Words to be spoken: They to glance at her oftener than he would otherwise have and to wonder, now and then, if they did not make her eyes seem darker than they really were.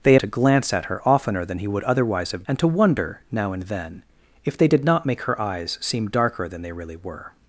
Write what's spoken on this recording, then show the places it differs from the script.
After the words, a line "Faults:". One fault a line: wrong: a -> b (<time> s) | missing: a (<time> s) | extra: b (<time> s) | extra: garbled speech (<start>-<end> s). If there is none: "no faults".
They to glance at her oftener than he would otherwise have and to wonder, now and then, if they did not make her eyes seem darker than they really were.
Faults:
no faults